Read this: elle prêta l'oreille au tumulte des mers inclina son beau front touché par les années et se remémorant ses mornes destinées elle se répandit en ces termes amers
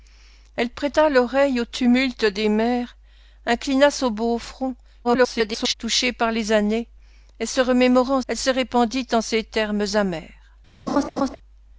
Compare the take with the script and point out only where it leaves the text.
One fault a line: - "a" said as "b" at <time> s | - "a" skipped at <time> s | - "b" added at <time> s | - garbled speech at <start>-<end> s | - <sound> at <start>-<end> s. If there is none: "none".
- garbled speech at 5.0-5.7 s
- "ses mornes destinées" skipped at 8.2 s
- laugh at 10.9-11.4 s